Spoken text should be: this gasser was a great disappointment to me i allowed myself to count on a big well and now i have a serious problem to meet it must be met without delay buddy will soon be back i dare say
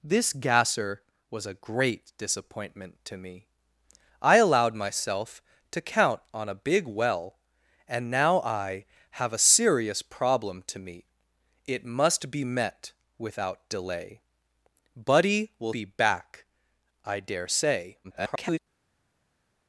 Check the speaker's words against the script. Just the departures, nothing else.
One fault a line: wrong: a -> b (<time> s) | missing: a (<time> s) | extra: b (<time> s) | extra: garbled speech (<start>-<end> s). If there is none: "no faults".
missing: soon (15.7 s)
extra: garbled speech (18.0-18.6 s)